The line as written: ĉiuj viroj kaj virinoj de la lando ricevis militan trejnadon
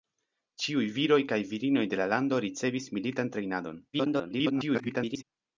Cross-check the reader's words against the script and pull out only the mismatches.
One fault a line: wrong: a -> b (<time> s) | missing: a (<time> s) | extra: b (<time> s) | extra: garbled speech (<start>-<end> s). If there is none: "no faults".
extra: garbled speech (3.9-5.2 s)